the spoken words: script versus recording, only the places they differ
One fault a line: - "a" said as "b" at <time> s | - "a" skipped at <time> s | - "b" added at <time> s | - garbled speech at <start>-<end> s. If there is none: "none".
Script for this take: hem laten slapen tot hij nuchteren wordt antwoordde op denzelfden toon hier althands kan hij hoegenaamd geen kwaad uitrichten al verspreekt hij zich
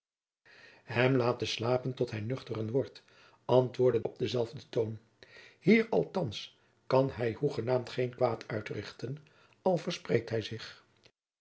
none